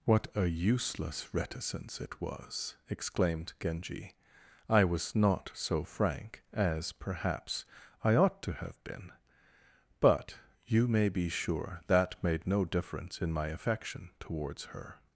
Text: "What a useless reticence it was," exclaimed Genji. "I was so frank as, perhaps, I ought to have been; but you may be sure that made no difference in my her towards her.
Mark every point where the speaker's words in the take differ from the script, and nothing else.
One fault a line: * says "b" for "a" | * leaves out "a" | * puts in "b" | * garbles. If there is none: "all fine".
* puts in "not"
* says "affection" for "her"